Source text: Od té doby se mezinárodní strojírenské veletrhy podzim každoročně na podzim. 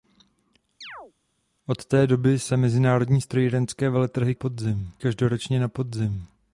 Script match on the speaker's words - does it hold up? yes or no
yes